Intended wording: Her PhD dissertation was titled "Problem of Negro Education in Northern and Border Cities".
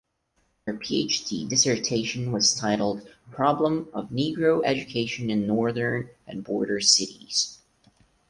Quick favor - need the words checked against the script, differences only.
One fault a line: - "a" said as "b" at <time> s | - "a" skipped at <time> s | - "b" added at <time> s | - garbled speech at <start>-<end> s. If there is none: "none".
none